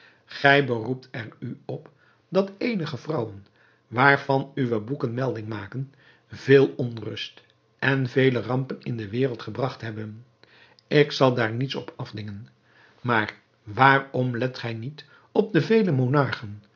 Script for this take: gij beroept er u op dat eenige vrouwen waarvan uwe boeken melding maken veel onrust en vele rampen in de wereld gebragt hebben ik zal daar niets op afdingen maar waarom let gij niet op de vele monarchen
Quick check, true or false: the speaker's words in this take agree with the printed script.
true